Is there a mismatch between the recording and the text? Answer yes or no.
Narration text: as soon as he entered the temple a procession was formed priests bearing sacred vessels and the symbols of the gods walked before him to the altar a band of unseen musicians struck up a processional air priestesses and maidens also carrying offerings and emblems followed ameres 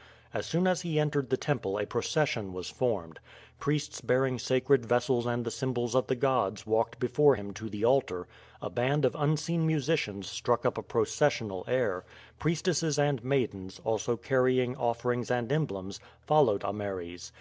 no